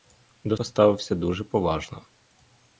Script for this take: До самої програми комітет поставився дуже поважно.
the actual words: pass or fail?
fail